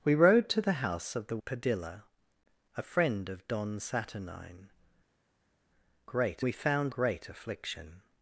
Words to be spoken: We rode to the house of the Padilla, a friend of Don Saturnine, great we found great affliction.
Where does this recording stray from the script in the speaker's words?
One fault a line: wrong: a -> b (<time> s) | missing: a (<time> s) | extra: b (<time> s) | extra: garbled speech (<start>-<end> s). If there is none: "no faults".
no faults